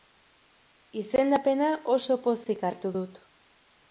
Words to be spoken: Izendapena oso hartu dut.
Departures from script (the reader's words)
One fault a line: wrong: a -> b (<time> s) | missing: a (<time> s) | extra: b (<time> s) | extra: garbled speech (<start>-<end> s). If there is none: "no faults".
extra: pozik (2.2 s)